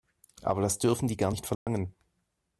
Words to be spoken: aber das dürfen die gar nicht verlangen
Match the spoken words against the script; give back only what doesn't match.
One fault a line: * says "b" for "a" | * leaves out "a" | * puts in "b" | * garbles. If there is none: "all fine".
all fine